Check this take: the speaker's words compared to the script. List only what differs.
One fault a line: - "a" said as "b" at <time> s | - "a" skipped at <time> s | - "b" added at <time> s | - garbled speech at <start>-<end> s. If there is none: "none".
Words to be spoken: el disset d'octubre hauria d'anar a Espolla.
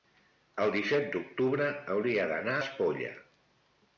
- "a" skipped at 2.6 s